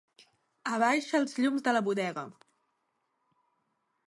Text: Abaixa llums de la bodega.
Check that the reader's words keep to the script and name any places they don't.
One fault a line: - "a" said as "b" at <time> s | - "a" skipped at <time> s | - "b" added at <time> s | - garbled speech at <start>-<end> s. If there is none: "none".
- "els" added at 1.2 s